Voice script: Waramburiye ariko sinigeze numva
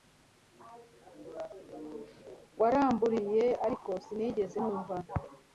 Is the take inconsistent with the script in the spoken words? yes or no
no